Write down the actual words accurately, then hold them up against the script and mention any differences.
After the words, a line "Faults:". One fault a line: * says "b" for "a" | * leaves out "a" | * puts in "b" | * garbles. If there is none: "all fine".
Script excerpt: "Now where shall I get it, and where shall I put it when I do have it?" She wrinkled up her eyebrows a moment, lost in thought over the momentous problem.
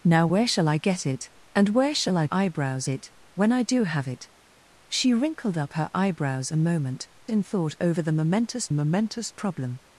"Now where shall I get it, and where shall I eyebrows it when I do have it?" She wrinkled up her eyebrows a moment, in thought over the momentous momentous problem.
Faults:
* says "eyebrows" for "put"
* leaves out "lost"
* puts in "momentous"